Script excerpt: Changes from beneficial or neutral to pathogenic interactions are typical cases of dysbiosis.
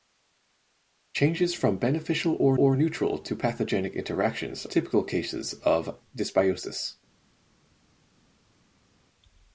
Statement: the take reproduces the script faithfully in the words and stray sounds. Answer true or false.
false